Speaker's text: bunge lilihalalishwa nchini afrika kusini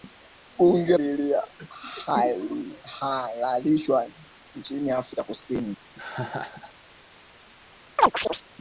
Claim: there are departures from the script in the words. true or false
false